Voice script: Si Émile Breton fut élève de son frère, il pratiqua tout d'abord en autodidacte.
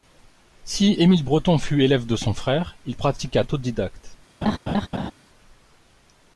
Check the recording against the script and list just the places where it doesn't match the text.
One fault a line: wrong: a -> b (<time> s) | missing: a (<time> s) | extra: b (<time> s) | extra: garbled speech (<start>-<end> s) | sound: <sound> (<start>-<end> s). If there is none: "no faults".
missing: tout d'abord en (3.4 s)
sound: laugh (4.4-5.1 s)